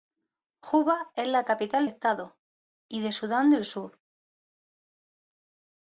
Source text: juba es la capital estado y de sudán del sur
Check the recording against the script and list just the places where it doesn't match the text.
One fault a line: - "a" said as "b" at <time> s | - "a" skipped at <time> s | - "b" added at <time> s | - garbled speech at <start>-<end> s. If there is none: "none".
none